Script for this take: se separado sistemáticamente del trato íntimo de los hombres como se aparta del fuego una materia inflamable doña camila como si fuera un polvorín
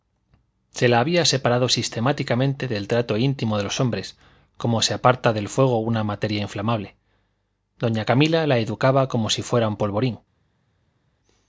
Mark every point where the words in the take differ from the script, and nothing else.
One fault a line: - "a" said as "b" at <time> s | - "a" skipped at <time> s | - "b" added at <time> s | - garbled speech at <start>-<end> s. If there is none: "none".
- "la había" added at 0.9 s
- "la educaba" added at 8.5 s